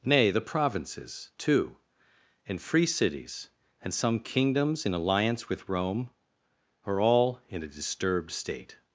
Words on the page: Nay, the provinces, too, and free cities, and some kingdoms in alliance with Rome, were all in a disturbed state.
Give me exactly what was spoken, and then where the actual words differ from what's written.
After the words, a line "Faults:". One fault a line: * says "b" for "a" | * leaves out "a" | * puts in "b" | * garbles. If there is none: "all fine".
Nay, the provinces, too, and free cities, and some kingdoms in alliance with Rome, are all in a disturbed state.
Faults:
* says "are" for "were"